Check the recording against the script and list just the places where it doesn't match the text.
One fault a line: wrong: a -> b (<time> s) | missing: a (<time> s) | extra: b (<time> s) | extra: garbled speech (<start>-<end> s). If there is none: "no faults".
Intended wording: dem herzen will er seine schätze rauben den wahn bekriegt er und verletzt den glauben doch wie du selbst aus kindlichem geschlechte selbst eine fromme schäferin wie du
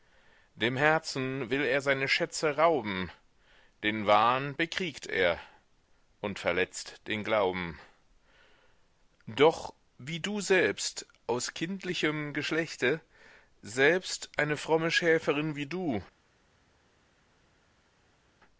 no faults